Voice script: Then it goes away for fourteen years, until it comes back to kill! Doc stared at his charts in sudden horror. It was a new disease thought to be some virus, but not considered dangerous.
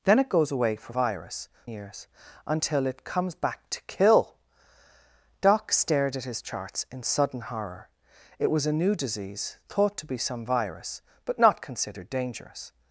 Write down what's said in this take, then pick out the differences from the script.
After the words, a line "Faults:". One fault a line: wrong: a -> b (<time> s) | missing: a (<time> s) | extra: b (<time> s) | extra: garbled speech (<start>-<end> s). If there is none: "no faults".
Then it goes away for virus years, until it comes back to kill! Doc stared at his charts in sudden horror. It was a new disease thought to be some virus, but not considered dangerous.
Faults:
wrong: fourteen -> virus (0.9 s)